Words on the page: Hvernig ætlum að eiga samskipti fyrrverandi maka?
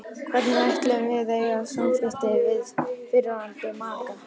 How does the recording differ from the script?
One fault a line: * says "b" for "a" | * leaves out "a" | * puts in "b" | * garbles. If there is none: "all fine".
* puts in "við"
* puts in "við"